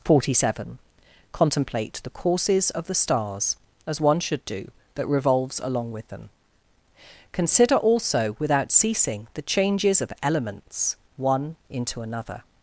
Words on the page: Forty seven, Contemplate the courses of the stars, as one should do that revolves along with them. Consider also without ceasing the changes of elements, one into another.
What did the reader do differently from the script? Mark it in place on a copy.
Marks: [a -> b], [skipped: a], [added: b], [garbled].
Forty seven, Contemplate the courses of the stars, as one should do that revolves along with them. Consider also without ceasing the changes of elements, one into another.